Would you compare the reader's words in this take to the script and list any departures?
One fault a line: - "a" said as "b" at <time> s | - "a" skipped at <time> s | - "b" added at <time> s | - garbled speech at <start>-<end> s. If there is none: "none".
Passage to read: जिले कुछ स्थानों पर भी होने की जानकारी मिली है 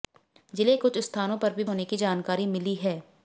none